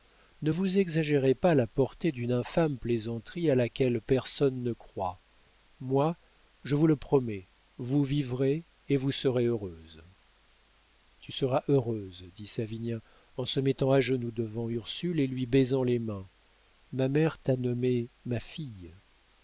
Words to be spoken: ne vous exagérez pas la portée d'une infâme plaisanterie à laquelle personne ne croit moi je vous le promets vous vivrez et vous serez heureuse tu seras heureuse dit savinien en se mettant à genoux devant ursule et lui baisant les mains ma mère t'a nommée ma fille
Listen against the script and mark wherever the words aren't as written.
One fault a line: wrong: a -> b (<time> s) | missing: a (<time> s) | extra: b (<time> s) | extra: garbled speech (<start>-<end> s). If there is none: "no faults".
no faults